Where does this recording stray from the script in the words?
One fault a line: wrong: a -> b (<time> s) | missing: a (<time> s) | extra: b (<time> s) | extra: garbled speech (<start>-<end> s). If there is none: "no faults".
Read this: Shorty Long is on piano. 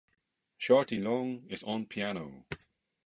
no faults